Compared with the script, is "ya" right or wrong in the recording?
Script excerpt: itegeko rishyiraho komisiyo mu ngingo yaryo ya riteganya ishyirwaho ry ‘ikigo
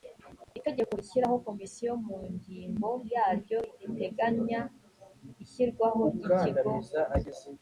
wrong